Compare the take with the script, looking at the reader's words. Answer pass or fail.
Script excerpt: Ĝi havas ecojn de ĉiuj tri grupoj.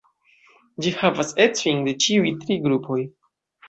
pass